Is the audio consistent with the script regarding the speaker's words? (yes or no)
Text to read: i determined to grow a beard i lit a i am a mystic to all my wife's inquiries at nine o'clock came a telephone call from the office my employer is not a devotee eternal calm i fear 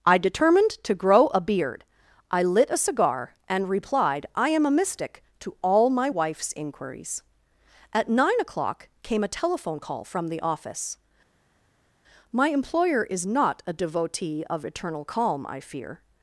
no